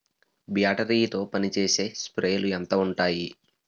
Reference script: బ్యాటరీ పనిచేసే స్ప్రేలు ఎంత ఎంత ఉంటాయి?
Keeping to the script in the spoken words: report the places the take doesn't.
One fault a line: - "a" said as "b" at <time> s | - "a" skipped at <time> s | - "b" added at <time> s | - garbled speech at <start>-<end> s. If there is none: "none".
- "తో" added at 1.1 s
- "ఎంత" skipped at 2.7 s